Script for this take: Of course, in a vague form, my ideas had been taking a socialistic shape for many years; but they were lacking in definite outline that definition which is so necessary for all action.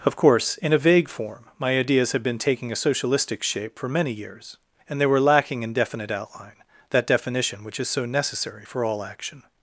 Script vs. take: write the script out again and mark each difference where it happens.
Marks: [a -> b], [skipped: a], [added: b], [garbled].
Of course, in a vague form, my ideas had been taking a socialistic shape for many years; [but -> and] they were lacking in definite outline that definition which is so necessary for all action.